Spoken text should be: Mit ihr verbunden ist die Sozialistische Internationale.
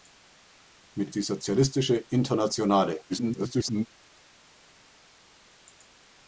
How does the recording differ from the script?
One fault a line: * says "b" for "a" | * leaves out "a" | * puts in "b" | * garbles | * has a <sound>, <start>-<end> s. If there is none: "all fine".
* leaves out "ihr verbunden ist"
* garbles